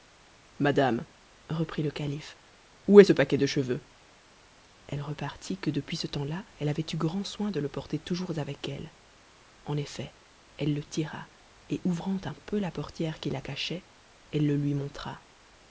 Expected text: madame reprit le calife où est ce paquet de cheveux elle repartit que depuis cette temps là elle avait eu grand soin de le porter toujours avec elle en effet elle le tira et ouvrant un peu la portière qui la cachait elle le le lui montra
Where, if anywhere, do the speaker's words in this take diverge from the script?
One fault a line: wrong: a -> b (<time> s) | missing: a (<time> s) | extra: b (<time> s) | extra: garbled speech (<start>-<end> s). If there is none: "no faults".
wrong: cette -> ce (5.9 s)
missing: le (14.6 s)